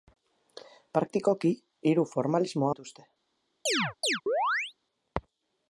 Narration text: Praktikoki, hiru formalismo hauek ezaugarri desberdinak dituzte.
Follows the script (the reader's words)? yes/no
no